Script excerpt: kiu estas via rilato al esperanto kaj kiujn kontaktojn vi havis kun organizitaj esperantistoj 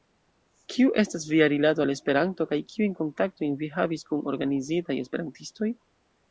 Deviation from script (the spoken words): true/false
false